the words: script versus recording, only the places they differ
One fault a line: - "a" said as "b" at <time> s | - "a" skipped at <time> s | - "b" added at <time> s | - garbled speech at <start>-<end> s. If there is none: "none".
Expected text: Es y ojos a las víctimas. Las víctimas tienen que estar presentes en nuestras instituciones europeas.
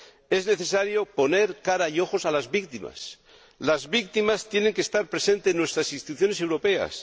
- "necesario poner cara" added at 0.5 s